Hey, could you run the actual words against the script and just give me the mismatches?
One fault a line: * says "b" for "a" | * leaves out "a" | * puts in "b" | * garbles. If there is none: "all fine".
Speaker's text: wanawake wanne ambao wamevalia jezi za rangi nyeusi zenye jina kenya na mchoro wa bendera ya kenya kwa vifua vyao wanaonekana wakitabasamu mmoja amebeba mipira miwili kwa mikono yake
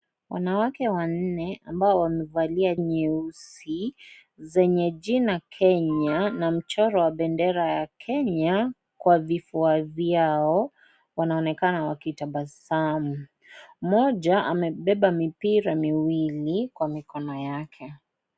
* leaves out "jezi za rangi"